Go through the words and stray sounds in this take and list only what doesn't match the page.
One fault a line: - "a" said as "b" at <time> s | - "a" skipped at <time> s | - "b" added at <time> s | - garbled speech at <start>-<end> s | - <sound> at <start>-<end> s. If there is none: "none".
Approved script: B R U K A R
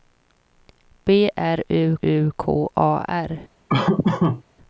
- "U" added at 2.0 s
- laugh at 3.7-4.4 s